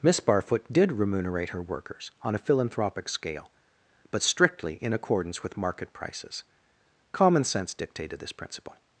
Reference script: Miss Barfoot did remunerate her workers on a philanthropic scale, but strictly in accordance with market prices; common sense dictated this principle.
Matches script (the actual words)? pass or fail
pass